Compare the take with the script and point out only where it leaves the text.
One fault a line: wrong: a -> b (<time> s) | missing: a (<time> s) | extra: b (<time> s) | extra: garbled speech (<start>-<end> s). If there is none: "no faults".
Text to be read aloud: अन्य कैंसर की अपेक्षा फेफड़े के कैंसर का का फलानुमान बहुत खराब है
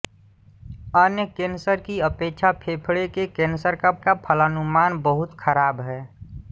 no faults